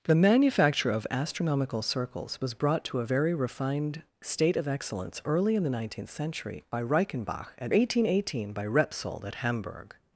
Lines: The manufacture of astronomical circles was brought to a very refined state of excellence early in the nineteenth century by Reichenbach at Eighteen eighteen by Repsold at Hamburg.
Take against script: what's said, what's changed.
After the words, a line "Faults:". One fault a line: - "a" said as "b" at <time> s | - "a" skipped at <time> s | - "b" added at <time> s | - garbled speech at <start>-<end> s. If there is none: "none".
The manufacture of astronomical circles was brought to a very refined state of excellence early in the nineteenth century by Reichenbach at Eighteen eighteen by Repsold at Hamburg.
Faults:
none